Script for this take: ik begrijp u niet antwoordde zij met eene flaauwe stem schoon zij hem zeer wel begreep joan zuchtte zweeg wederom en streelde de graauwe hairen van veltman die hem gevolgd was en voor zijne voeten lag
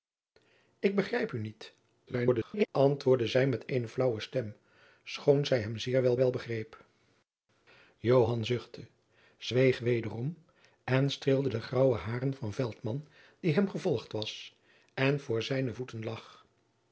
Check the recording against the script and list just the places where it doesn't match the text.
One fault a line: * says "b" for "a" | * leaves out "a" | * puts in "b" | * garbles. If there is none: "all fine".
* garbles
* puts in "wel"